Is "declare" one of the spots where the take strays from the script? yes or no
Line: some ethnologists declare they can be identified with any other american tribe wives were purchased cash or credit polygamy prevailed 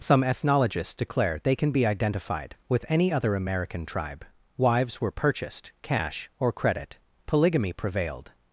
no